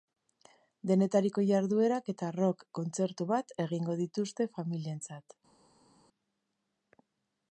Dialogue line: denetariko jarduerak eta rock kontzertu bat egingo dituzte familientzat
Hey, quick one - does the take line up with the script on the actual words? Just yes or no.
yes